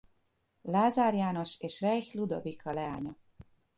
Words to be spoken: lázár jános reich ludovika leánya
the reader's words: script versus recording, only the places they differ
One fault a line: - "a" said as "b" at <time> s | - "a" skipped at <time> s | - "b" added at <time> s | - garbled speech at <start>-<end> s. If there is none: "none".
- "és" added at 1.6 s